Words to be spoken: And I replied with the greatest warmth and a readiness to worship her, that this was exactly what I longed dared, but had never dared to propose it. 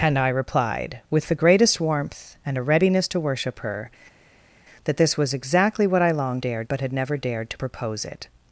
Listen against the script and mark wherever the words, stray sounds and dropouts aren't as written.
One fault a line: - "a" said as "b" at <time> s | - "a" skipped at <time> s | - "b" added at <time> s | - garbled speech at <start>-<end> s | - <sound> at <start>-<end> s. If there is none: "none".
none